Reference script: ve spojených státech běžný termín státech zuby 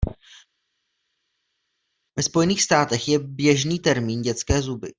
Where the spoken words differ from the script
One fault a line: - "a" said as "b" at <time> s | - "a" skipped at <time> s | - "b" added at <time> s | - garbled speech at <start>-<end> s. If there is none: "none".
- "je" added at 3.1 s
- "státech" said as "dětské" at 4.2 s